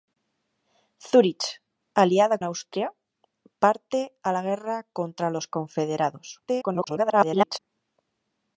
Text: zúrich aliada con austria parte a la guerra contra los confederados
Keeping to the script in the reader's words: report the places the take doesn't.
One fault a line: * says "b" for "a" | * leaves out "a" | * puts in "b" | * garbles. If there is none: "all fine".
* leaves out "con"
* garbles